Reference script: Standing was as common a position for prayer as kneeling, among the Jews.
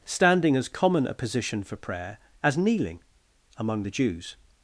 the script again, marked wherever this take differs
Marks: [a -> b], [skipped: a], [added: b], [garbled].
Standing [skipped: was] as common a position for prayer as kneeling, among the Jews.